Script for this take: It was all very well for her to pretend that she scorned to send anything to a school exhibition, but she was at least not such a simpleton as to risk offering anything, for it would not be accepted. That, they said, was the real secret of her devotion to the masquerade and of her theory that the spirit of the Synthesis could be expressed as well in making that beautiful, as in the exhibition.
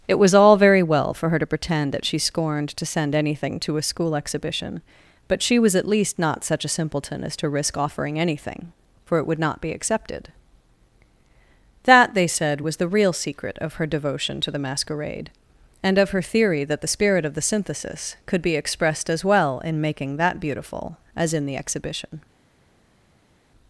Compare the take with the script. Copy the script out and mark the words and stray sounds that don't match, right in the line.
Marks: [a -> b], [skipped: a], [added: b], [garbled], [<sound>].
It was all very well for her to pretend that she scorned to send anything to a school exhibition, but she was at least not such a simpleton as to risk offering anything, for it would not be accepted. That, they said, was the real secret of her devotion to the masquerade and of her theory that the spirit of the Synthesis could be expressed as well in making that beautiful, as in the exhibition.